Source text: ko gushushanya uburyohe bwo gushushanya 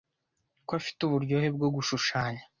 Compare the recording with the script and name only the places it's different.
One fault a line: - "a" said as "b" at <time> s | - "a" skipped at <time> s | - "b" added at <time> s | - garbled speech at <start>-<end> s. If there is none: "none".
- "gushushanya" said as "afite" at 0.8 s